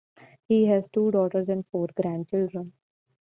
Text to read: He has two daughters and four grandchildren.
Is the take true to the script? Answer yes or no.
yes